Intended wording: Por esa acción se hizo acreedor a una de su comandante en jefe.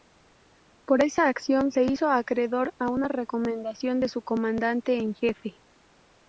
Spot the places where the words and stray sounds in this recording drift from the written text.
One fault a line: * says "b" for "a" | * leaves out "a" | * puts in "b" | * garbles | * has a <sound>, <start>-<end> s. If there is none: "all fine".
* puts in "recomendación"